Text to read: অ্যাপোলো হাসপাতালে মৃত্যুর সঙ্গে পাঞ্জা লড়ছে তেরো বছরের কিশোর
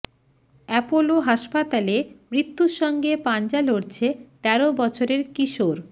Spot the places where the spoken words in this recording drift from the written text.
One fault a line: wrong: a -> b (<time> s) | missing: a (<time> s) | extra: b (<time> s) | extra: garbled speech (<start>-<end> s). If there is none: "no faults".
no faults